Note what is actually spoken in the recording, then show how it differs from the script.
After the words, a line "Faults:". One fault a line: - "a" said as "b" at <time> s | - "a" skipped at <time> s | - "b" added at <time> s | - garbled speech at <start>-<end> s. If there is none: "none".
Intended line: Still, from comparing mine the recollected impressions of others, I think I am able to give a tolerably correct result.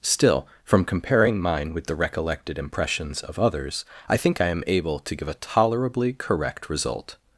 Still, from comparing mine with the recollected impressions of others, I think I am able to give a tolerably correct result.
Faults:
- "with" added at 1.7 s